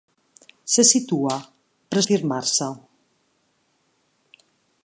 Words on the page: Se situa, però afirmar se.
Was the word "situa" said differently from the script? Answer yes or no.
no